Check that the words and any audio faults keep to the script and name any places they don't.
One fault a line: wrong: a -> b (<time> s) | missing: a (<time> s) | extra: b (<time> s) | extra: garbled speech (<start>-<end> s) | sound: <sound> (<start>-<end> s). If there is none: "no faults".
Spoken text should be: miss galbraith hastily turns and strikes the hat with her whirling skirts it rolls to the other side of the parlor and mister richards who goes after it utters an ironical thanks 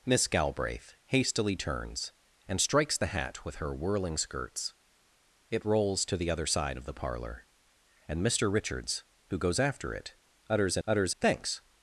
wrong: ironical -> utters (10.9 s)